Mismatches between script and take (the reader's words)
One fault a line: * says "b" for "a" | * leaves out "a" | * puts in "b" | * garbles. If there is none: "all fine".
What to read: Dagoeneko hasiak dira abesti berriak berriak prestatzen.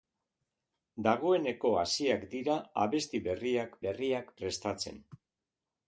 all fine